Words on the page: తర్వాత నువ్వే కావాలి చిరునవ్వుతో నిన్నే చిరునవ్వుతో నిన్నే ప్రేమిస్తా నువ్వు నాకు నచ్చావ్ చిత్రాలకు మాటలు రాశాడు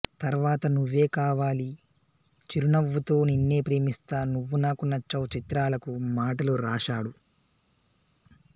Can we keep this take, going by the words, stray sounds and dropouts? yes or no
no